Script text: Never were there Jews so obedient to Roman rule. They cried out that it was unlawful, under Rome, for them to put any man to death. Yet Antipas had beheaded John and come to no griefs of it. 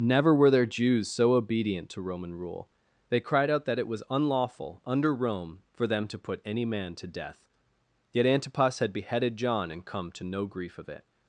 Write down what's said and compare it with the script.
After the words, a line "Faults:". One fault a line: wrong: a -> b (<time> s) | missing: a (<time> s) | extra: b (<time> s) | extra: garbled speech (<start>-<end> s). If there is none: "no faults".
Never were there Jews so obedient to Roman rule. They cried out that it was unlawful, under Rome, for them to put any man to death. Yet Antipas had beheaded John and come to no grief of it.
Faults:
wrong: griefs -> grief (10.5 s)